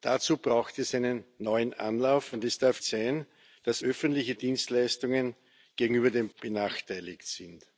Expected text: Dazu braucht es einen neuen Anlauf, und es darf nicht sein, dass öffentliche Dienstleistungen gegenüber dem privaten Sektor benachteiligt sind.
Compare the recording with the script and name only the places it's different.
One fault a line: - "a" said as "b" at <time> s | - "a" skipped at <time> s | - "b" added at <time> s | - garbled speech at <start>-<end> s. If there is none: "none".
- "nicht" skipped at 2.8 s
- "privaten Sektor" skipped at 6.3 s